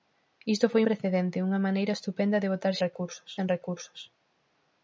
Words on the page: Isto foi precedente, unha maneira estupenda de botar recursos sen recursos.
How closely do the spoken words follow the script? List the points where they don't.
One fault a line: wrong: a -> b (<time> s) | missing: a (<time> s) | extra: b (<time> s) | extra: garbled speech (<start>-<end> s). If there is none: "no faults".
no faults